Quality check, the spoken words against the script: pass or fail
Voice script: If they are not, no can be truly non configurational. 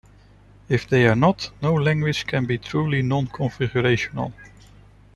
fail